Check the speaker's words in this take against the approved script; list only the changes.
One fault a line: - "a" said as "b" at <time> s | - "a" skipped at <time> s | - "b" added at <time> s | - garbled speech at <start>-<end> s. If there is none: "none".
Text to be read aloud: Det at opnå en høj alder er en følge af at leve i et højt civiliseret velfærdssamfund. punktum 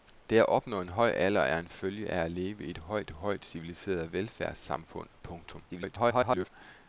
- "højt" added at 3.1 s
- garbled speech at 5.7-6.5 s